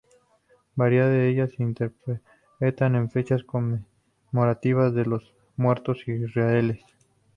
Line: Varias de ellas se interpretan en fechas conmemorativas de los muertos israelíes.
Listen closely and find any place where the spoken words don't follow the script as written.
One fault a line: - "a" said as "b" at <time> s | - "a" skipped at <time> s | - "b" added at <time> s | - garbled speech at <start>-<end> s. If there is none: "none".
none